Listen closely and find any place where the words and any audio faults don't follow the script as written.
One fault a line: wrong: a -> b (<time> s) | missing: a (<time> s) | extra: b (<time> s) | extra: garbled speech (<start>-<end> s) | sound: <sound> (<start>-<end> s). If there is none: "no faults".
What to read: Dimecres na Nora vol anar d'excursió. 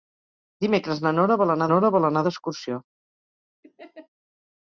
extra: Nora vol anar (1.7 s)
sound: laugh (3.6-4.1 s)